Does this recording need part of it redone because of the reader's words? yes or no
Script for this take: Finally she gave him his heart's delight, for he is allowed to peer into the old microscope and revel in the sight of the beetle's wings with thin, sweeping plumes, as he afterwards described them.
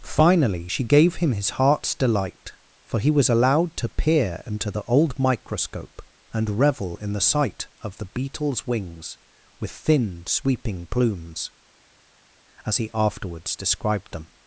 yes